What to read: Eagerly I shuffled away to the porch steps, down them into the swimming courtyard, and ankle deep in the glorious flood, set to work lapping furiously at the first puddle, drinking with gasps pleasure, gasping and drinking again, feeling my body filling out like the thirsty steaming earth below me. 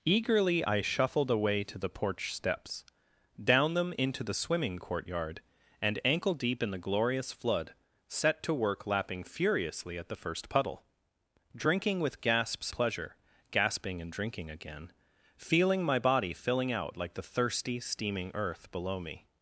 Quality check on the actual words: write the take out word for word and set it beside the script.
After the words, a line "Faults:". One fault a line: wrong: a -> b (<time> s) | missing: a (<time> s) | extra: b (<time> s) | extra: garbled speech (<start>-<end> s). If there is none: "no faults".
Eagerly I shuffled away to the porch steps, down them into the swimming courtyard, and ankle deep in the glorious flood, set to work lapping furiously at the first puddle, drinking with gasps pleasure, gasping and drinking again, feeling my body filling out like the thirsty steaming earth below me.
Faults:
no faults